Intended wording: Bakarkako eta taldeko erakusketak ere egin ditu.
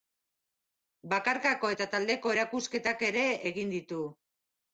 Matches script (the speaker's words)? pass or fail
pass